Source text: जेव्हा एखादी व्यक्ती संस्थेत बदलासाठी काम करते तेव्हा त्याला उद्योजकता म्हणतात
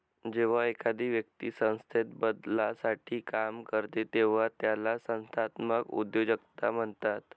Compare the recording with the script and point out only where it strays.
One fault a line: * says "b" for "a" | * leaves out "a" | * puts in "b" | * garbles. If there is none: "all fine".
* puts in "संस्थात्मक"